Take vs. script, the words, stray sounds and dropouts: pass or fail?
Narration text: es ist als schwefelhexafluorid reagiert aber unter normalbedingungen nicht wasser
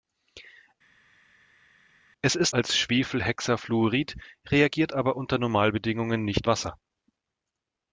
pass